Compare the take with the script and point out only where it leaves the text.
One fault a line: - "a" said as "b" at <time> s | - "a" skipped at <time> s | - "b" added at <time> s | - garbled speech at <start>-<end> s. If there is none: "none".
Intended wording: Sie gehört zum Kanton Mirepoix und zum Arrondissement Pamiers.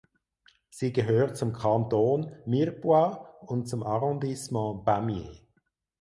none